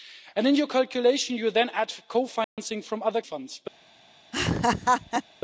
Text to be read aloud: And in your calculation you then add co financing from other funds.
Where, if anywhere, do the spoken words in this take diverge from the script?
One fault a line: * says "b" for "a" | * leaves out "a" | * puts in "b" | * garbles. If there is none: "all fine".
all fine